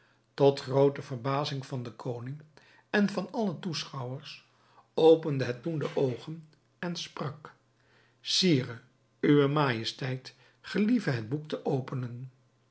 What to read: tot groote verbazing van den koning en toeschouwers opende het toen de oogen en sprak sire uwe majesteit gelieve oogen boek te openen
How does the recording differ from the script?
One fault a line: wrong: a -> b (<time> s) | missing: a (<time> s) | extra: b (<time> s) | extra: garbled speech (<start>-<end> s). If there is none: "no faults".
extra: van alle (3.1 s)
wrong: oogen -> het (11.1 s)